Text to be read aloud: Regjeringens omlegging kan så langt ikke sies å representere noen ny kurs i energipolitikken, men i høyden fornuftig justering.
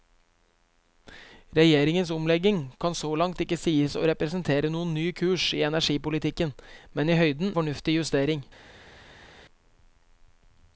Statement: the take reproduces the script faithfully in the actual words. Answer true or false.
true